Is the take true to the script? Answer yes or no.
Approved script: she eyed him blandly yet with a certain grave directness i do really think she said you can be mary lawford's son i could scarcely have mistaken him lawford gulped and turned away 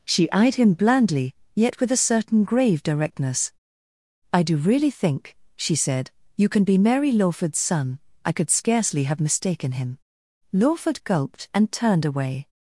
yes